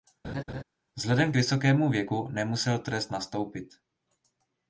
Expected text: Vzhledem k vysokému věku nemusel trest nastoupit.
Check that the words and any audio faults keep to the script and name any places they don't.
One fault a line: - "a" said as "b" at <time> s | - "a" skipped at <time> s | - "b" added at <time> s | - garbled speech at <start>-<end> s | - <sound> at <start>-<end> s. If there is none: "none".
- laugh at 0.2-0.6 s